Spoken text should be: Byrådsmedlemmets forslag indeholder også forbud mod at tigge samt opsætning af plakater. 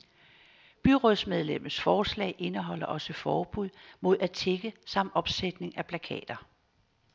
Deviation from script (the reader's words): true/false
false